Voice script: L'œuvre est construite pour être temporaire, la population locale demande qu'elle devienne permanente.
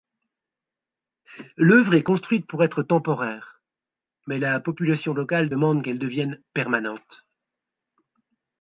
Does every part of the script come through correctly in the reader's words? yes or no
no